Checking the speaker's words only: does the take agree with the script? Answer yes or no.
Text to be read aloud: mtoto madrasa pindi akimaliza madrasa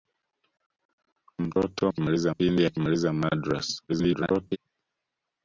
no